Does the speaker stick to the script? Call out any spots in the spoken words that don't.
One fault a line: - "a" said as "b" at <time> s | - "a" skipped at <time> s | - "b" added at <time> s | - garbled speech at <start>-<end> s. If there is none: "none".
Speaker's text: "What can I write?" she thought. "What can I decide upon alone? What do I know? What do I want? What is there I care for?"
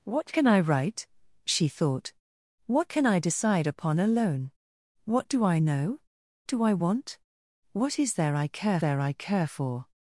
- "What" skipped at 6.0 s
- "there I care" added at 8.8 s